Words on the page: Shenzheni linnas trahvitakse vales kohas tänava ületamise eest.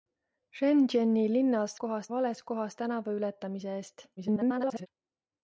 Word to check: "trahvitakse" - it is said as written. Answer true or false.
false